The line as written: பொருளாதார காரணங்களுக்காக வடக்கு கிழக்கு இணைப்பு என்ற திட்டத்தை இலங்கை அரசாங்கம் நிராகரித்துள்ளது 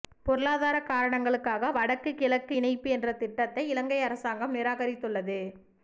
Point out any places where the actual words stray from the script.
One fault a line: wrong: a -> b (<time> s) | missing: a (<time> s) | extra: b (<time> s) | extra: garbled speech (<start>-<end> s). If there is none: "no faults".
no faults